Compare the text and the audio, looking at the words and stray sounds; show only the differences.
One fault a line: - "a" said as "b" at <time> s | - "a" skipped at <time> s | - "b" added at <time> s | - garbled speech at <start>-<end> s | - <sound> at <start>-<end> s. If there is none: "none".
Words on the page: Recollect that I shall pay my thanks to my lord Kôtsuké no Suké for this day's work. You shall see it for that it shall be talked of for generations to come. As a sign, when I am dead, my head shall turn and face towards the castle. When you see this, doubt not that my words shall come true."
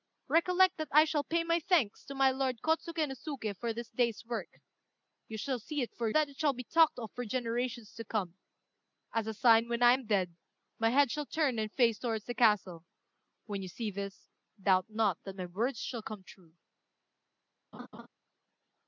- laugh at 17.7-18.1 s